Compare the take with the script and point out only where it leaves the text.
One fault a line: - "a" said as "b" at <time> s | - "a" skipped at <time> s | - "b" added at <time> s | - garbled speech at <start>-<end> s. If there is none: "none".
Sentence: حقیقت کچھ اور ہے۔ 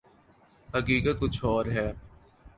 none